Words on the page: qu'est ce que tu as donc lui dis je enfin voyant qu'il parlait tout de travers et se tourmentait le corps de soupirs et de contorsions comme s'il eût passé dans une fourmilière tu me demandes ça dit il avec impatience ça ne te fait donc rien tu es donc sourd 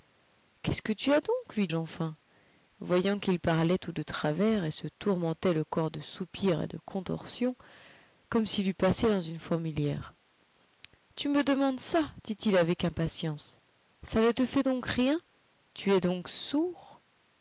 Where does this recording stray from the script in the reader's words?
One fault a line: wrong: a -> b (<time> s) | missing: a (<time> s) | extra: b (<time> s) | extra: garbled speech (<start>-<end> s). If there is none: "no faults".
missing: dis (1.7 s)